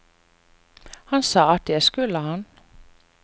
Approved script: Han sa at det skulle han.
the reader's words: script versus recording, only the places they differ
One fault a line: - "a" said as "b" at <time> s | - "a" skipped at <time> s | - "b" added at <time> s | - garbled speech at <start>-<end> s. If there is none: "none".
none